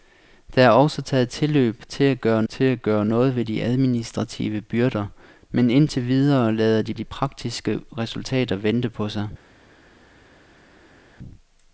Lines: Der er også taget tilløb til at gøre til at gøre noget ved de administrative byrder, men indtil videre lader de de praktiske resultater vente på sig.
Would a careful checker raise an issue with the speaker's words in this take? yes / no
no